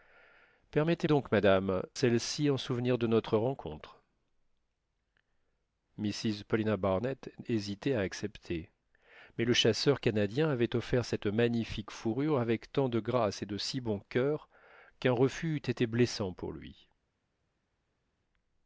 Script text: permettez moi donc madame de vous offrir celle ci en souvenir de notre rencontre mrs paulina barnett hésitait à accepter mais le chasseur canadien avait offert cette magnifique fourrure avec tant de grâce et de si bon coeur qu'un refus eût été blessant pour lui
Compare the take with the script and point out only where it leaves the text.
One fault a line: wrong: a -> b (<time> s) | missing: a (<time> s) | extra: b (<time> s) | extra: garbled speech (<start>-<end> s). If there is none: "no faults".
missing: moi (1.1 s)
missing: de vous offrir (1.8 s)